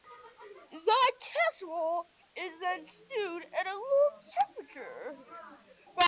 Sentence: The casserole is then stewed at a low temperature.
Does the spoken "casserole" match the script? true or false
true